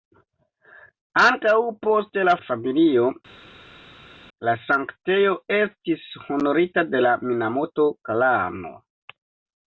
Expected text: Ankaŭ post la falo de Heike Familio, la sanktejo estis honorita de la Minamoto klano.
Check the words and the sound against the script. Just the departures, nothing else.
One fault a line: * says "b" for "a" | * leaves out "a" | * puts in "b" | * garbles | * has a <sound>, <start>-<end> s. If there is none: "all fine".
* leaves out "falo de Heike"